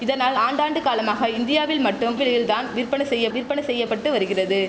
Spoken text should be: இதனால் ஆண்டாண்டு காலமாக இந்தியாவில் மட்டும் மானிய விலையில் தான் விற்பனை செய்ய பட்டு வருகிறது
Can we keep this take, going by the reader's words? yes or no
no